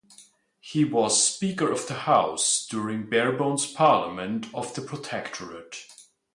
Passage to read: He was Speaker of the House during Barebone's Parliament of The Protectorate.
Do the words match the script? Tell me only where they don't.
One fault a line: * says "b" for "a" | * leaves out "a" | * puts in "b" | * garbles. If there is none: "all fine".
all fine